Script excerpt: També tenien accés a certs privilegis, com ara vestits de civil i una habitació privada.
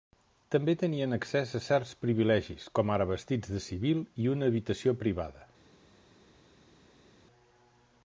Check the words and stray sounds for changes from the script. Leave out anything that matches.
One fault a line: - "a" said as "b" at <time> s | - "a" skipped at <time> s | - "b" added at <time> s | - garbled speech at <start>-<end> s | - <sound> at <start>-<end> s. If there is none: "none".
none